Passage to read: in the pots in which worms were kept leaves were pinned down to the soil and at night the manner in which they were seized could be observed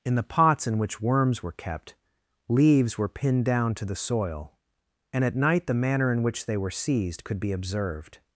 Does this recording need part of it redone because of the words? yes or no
no